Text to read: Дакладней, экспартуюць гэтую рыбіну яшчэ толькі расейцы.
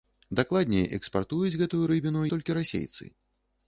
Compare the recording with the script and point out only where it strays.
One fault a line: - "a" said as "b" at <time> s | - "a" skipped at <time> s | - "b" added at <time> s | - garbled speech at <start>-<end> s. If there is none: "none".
- "яшчэ" skipped at 2.2 s